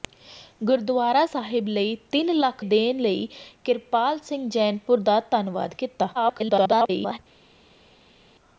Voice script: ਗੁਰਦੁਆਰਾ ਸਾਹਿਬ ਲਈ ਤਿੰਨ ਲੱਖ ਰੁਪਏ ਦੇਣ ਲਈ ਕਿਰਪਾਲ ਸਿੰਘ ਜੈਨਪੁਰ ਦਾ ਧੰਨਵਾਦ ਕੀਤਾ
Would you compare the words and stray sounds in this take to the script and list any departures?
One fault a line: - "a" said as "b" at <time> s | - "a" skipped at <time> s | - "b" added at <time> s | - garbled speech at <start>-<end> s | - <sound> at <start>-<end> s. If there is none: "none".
- "ਰੁਪਏ" skipped at 2.6 s
- garbled speech at 6.1-7.2 s